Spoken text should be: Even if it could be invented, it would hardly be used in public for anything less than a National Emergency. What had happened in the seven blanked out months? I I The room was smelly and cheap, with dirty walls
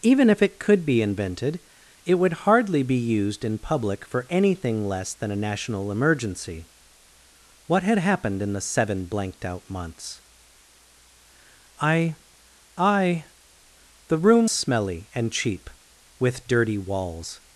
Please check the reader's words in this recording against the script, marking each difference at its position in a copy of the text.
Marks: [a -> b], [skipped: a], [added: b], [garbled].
Even if it could be invented, it would hardly be used in public for anything less than a National Emergency. What had happened in the seven blanked out months? I I The room [skipped: was] smelly and cheap, with dirty walls